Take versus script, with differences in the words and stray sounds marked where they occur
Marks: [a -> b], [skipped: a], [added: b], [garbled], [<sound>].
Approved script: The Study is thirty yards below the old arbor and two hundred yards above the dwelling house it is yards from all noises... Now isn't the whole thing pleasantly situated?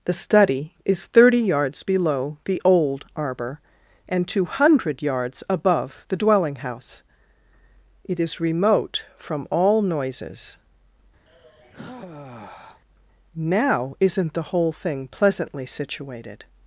The Study is thirty yards below the old arbor and two hundred yards above the dwelling house it is [yards -> remote] from all noises... [sigh] Now isn't the whole thing pleasantly situated?